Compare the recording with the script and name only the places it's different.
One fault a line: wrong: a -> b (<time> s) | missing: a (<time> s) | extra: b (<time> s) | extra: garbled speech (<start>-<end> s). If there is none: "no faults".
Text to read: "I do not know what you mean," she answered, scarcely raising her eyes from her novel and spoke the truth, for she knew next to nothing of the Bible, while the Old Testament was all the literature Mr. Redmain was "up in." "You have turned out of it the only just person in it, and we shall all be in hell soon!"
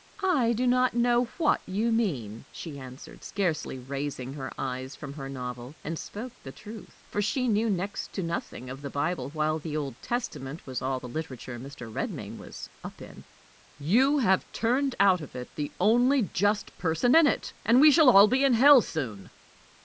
no faults